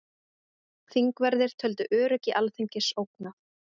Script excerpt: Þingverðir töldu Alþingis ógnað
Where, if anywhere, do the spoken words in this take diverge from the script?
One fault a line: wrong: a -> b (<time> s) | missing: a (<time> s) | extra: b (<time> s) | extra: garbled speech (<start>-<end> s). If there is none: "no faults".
extra: öryggi (2.0 s)